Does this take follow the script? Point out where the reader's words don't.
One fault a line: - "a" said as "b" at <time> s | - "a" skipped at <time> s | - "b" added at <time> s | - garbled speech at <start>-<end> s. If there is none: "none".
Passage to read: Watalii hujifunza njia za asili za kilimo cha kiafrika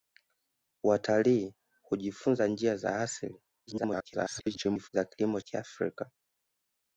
- garbled speech at 3.7-4.9 s
- "cha" skipped at 5.4 s